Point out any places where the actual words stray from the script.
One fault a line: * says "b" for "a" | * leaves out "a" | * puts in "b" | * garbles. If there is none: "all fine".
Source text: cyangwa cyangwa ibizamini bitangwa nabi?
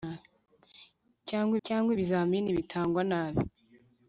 all fine